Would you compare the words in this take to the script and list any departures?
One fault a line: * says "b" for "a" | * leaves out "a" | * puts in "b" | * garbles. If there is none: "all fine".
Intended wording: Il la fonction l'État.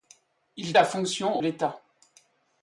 all fine